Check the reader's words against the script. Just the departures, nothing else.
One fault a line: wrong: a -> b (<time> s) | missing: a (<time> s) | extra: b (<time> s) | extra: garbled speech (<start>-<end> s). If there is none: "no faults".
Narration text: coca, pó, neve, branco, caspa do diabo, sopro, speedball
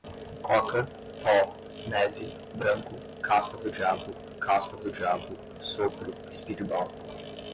extra: caspa do diabo (4.4 s)